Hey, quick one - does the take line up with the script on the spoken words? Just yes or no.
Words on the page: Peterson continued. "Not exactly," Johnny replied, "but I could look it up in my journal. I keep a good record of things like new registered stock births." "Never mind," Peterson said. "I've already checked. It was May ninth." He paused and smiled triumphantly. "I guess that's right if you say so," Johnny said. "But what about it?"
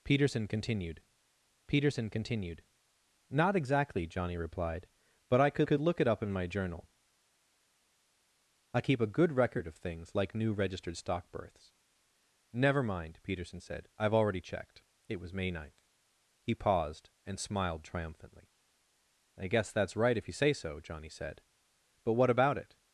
no